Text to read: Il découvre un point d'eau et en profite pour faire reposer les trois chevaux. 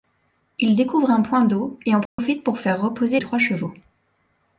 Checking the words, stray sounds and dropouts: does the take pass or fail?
fail